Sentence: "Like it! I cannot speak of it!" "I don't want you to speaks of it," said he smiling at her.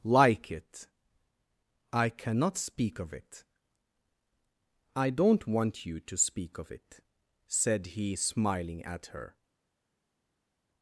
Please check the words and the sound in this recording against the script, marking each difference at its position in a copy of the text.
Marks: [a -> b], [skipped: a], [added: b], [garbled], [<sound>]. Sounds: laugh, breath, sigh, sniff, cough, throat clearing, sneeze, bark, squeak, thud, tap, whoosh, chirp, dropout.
"Like it! I cannot speak of it!" "I don't want you to [speaks -> speak] of it," said he smiling at her.